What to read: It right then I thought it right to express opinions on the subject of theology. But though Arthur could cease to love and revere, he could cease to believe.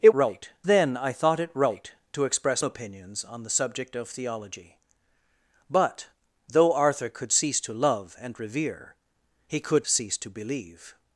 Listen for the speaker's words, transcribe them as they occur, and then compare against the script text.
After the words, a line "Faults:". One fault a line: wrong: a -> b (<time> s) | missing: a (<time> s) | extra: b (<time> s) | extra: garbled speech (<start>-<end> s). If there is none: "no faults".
It right then I thought it right to express opinions on the subject of theology. But though Arthur could cease to love and revere, he could cease to believe.
Faults:
no faults